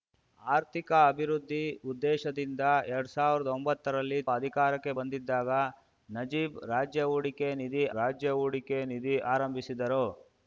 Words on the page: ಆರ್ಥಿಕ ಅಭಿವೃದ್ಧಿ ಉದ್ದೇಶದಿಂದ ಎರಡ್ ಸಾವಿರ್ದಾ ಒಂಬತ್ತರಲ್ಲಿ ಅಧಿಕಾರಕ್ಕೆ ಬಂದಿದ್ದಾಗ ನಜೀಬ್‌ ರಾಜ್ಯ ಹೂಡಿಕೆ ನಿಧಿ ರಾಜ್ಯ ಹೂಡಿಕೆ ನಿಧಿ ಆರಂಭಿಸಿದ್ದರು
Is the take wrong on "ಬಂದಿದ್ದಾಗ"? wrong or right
right